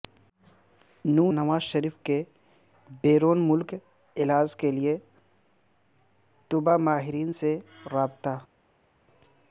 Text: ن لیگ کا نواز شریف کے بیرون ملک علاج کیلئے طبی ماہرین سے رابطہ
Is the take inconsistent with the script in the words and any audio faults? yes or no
yes